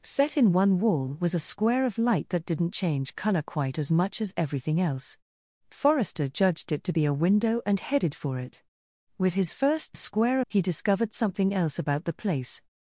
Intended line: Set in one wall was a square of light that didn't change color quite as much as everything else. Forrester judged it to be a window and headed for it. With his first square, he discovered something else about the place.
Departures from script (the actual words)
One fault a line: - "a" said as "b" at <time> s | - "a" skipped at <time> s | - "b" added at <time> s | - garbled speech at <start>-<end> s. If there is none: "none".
none